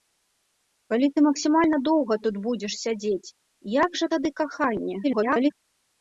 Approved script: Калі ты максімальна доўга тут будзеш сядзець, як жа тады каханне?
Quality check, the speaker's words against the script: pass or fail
fail